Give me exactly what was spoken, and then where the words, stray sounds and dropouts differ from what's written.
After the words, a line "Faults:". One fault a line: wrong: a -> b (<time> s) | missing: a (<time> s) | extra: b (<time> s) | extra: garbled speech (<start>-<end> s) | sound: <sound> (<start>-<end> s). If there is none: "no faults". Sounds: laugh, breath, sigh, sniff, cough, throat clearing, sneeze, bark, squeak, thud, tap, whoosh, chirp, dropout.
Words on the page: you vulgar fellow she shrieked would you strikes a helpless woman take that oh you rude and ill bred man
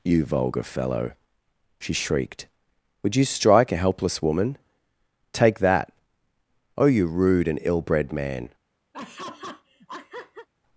you vulgar fellow she shrieked would you strike a helpless woman take that oh you rude and ill bred man
Faults:
wrong: strikes -> strike (3.2 s)
sound: laugh (8.9-10.5 s)